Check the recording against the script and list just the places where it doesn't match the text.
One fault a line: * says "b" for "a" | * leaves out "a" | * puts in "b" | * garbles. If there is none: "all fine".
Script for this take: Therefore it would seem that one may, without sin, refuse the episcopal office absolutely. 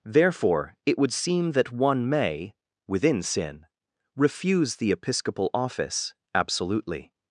* says "within" for "without"